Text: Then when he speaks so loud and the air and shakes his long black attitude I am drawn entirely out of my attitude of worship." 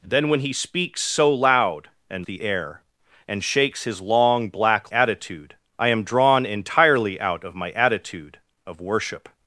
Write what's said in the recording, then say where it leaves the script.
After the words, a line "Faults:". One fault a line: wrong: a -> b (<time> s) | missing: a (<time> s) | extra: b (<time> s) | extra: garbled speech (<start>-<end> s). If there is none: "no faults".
Then when he speaks so loud and the air and shakes his long black attitude I am drawn entirely out of my attitude of worship."
Faults:
no faults